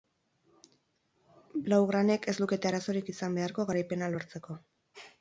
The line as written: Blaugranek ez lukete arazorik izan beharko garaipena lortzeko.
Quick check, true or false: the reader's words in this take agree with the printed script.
true